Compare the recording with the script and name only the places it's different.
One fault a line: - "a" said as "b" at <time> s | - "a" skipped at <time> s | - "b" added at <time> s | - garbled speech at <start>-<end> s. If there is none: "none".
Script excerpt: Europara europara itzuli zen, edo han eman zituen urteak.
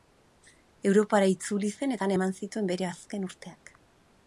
- "europara" skipped at 1.3 s
- "edo" said as "eta" at 2.0 s
- "bere azken" added at 2.7 s